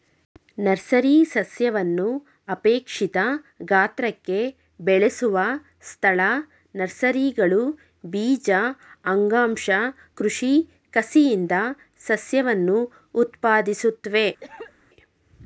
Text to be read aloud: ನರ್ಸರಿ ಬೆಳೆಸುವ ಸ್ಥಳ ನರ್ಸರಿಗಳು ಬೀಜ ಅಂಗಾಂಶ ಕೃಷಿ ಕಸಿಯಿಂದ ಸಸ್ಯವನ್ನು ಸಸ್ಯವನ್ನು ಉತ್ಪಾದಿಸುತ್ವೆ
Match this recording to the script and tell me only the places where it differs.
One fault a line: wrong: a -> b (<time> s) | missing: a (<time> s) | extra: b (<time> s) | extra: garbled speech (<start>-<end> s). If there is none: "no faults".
extra: ಸಸ್ಯವನ್ನು ಅಪೇಕ್ಷಿತ ಗಾತ್ರಕ್ಕೆ (1.3 s)
missing: ಸಸ್ಯವನ್ನು (12.8 s)